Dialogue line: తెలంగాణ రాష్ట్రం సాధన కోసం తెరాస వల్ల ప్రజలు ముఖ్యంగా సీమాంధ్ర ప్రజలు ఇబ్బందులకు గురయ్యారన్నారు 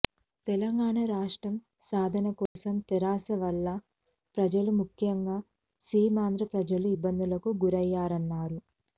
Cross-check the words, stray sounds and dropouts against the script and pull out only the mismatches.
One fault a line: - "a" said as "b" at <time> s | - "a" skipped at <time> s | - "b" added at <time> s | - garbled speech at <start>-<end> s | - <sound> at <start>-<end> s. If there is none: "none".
- dropout at 2.5-2.6 s